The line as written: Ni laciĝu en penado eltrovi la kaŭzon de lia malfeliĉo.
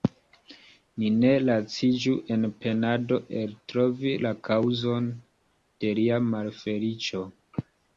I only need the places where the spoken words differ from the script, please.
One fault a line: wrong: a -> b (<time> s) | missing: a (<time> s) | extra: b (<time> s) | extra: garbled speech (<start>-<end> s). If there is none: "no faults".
extra: ne (1.2 s)